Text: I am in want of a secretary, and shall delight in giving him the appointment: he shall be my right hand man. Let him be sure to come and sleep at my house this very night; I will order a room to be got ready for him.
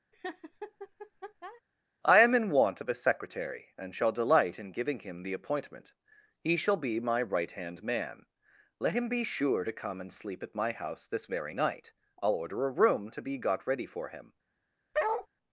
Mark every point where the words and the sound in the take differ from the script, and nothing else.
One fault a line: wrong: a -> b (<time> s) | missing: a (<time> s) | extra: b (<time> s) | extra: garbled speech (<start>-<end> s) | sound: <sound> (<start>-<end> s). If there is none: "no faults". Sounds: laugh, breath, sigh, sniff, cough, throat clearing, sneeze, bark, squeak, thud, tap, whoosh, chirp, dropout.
sound: laugh (0.1-1.6 s)
sound: bark (14.9-15.3 s)